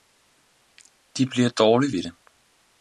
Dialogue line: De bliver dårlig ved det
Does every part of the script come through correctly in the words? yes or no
yes